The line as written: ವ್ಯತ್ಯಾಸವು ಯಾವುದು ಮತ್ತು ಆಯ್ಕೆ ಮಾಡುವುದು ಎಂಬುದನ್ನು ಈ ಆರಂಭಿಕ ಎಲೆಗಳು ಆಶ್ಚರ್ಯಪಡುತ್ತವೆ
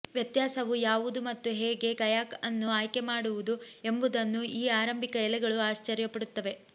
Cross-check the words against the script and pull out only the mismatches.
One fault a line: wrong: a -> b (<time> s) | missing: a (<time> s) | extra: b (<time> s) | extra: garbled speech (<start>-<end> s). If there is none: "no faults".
extra: ಹೇಗೆ ಕಯಾಕ್ ಅನ್ನು (1.6 s)